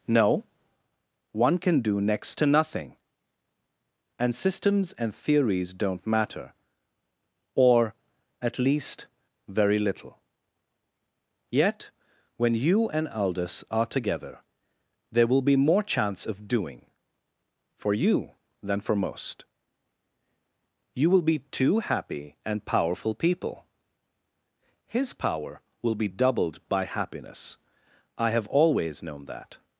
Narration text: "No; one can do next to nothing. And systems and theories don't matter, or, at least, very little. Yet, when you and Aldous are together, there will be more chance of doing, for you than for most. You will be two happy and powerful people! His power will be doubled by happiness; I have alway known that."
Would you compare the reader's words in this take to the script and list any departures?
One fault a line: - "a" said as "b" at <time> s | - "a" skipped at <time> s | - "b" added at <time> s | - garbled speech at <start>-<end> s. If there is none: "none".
- "alway" said as "always" at 28.5 s